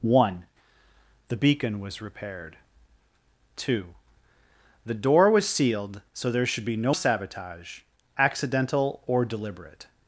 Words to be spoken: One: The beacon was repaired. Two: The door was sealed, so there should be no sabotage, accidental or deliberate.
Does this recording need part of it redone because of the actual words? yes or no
no